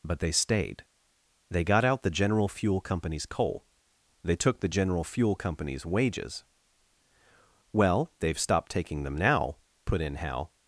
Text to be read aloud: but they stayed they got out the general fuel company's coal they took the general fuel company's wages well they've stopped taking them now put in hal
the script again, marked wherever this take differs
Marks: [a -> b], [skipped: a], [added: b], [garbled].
but they stayed they got out the general fuel company's coal they took the general fuel company's wages well they've stopped taking them now put in hal